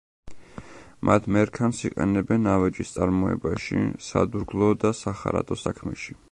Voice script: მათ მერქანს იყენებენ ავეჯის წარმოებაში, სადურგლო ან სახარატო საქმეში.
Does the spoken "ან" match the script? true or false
false